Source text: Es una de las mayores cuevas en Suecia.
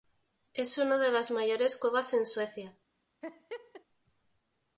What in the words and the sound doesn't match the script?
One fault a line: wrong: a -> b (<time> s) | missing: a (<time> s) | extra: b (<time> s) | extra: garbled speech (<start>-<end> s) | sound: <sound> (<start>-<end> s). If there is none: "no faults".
sound: laugh (3.2-3.8 s)